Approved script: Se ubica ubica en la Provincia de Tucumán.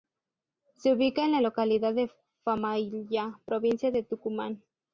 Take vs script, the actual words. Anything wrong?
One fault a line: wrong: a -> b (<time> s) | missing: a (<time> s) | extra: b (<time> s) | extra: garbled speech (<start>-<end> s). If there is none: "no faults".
missing: ubica (1.2 s)
extra: localidad de Famaillá (1.4 s)